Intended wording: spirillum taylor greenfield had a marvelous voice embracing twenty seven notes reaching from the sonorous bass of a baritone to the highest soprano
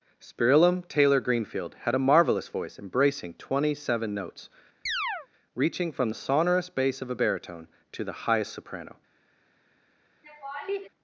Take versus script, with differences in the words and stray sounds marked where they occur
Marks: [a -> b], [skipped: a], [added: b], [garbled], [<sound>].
spirillum taylor greenfield had a marvelous voice embracing twenty seven notes [chirp] reaching from the sonorous bass of a baritone to the highest soprano [laugh]